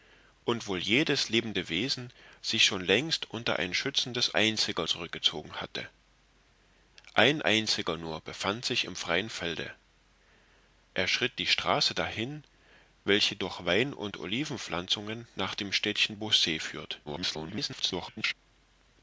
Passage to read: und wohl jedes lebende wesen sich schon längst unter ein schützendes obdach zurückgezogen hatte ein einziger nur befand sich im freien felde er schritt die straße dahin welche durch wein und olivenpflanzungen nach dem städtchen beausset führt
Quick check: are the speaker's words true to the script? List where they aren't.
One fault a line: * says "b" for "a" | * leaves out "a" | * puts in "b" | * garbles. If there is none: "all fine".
* says "einziger" for "obdach"
* garbles